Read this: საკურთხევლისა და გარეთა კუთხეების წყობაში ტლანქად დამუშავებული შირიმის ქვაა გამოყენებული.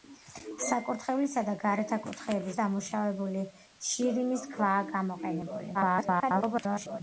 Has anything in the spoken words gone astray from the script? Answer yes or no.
yes